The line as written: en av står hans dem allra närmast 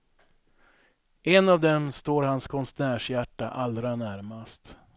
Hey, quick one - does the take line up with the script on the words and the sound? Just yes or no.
no